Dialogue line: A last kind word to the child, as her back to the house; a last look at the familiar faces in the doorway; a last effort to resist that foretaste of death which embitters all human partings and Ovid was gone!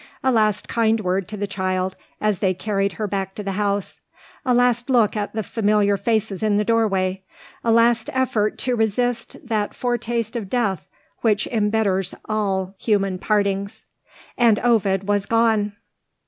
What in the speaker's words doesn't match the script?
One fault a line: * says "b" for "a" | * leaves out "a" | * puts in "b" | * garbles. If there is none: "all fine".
* puts in "they carried"